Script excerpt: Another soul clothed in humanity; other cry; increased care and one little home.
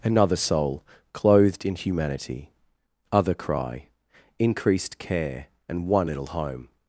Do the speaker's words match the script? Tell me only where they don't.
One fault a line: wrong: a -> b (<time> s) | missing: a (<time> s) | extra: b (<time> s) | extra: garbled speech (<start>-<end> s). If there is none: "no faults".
no faults